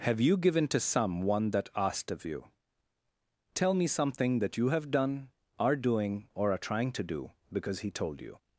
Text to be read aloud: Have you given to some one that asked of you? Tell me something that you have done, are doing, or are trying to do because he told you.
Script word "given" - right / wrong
right